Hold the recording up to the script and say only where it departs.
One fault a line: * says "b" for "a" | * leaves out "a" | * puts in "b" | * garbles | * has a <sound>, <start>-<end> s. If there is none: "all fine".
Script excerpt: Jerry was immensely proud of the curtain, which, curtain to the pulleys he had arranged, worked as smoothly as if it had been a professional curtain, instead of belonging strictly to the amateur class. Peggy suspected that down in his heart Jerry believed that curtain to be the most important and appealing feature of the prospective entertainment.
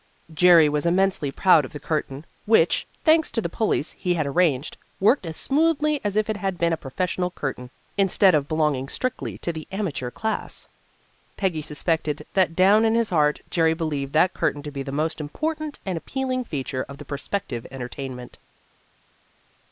* says "thanks" for "curtain"